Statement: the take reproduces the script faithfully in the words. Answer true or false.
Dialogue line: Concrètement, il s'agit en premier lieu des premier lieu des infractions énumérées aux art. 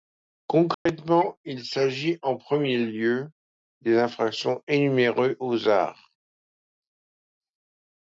false